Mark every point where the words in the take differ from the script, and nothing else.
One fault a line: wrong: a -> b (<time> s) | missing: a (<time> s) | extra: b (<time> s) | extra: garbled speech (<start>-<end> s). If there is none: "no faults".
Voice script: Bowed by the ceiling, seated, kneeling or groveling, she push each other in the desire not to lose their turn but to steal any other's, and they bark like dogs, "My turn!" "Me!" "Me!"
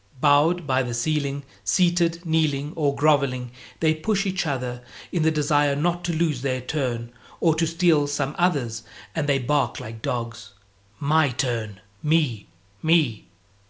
wrong: she -> they (3.8 s)
wrong: but -> or (7.4 s)
wrong: any -> some (8.1 s)